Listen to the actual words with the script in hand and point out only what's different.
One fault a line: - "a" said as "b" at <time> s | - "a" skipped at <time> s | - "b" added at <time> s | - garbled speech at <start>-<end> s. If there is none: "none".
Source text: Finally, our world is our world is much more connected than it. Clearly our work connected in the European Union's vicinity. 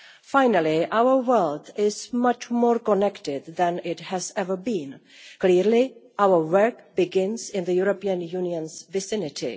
- "our world is" skipped at 2.1 s
- "has ever been" added at 4.0 s
- "connected" said as "begins" at 7.0 s